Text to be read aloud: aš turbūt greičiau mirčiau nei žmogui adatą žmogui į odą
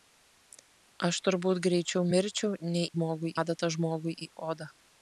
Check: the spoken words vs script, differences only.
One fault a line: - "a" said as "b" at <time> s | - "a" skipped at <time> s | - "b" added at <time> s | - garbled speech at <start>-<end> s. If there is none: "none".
none